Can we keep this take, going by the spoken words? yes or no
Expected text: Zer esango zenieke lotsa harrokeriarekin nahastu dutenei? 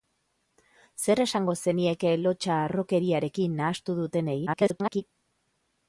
no